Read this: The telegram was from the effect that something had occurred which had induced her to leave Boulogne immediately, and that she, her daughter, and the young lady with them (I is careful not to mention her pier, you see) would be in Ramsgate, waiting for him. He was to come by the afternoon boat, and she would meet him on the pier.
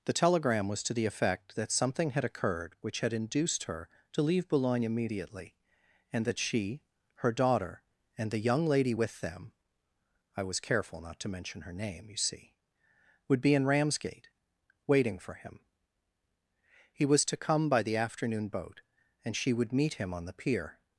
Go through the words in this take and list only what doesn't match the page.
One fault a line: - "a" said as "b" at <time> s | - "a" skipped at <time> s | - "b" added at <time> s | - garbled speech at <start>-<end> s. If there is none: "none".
- "from" said as "to" at 0.8 s
- "is" said as "was" at 10.4 s
- "pier" said as "name" at 11.7 s